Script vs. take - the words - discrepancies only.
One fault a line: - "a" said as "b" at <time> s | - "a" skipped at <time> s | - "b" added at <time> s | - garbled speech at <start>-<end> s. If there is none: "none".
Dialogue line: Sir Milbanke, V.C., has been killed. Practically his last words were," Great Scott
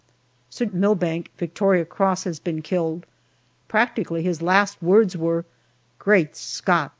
none